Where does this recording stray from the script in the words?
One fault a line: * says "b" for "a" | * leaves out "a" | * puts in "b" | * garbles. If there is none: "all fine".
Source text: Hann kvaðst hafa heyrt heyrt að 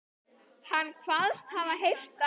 * leaves out "heyrt"